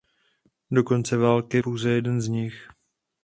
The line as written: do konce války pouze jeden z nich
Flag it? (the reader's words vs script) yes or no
no